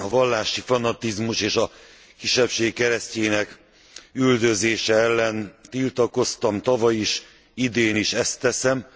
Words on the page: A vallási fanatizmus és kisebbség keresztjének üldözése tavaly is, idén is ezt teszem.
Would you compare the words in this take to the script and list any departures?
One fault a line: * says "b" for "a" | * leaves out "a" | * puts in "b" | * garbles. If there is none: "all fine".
* puts in "a"
* puts in "ellen tiltakoztam"